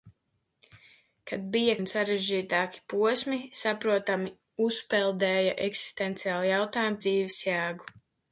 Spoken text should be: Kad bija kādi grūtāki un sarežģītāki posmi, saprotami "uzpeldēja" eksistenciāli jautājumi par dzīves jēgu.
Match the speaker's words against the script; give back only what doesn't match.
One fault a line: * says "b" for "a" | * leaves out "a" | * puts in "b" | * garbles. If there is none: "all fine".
* leaves out "kādi grūtāki"
* leaves out "par"